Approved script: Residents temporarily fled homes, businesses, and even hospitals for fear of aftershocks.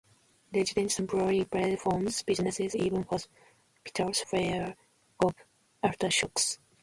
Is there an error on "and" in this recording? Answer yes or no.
yes